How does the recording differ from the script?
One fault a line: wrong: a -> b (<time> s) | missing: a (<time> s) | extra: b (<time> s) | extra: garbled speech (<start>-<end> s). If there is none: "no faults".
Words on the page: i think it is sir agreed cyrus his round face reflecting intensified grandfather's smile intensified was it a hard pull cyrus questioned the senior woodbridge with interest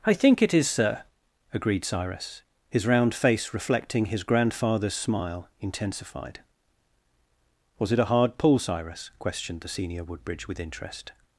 wrong: intensified -> his (4.0 s)